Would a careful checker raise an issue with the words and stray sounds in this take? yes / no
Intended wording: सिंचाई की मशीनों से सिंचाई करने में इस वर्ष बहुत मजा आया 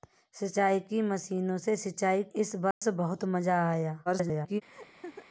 yes